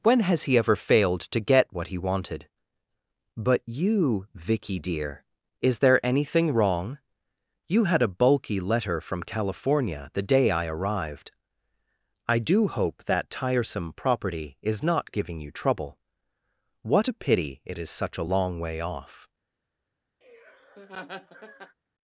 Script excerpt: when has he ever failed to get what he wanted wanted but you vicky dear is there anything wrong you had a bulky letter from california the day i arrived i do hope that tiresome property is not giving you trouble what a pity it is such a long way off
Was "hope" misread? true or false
false